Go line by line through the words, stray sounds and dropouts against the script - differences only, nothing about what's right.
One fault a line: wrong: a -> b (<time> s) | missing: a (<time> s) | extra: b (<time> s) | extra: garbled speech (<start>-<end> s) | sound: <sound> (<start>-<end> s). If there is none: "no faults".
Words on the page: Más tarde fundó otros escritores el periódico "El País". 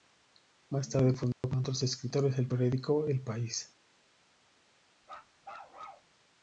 sound: dropout (1.3-1.4 s)
sound: bark (5.0-6.1 s)